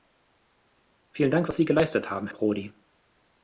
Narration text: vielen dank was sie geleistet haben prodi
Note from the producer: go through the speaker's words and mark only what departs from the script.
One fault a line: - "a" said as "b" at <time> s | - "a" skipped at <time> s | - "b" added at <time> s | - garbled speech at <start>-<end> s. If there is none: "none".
none